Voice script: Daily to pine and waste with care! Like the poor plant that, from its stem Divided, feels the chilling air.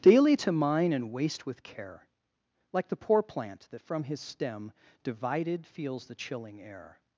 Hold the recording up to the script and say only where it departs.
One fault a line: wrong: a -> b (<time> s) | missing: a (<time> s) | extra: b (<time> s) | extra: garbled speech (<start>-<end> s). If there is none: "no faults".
wrong: pine -> mine (0.5 s)
wrong: its -> his (4.0 s)